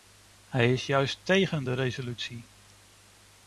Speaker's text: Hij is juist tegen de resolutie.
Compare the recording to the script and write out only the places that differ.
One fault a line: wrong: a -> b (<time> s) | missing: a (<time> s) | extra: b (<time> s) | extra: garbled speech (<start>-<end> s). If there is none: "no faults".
no faults